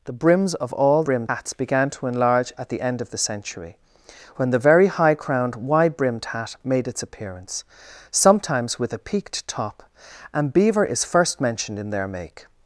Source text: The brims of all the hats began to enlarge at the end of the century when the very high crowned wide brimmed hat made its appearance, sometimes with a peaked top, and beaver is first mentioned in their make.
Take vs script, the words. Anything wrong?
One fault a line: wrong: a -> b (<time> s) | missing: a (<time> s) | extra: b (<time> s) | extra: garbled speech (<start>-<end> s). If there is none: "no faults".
wrong: the -> brimmed (1.0 s)